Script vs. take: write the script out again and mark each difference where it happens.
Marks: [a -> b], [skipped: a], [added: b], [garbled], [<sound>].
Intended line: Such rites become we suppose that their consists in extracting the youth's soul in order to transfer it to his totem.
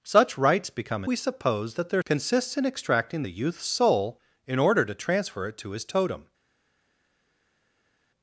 Such rites become we suppose that their consists in extracting the youth's soul in order to transfer it to his totem.